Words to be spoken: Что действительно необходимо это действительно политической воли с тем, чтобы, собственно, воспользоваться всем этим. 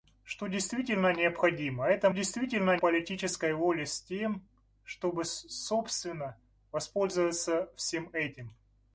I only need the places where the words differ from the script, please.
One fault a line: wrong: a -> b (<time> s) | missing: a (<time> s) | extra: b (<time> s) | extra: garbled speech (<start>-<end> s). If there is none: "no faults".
no faults